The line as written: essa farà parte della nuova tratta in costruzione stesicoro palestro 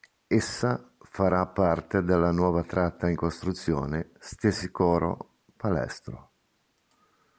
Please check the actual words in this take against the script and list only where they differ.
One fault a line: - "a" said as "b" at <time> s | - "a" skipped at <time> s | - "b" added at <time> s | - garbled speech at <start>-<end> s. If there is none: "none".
none